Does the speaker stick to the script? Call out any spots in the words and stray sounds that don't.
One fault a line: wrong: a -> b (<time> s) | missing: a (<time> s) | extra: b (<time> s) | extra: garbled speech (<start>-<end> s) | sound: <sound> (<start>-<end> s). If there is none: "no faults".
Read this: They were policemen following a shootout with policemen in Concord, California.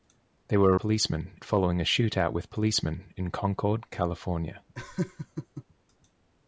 sound: laugh (4.7-5.6 s)